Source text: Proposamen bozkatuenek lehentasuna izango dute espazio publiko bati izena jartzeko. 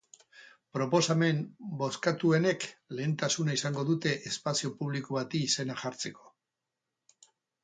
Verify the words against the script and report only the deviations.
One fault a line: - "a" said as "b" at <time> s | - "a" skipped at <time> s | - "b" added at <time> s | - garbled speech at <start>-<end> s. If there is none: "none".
none